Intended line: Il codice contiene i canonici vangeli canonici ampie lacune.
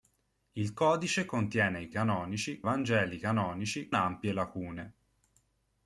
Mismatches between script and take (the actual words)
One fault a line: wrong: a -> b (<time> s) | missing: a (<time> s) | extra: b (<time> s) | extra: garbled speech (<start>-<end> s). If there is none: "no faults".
no faults